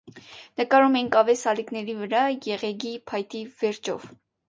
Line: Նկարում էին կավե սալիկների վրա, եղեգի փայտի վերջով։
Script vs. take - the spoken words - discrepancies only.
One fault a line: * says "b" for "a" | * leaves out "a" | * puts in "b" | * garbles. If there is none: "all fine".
all fine